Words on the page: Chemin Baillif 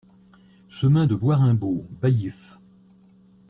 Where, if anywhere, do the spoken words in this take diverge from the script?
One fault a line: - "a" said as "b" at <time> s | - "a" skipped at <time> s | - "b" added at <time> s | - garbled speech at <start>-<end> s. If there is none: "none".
- "de Bois Raimbault" added at 1.0 s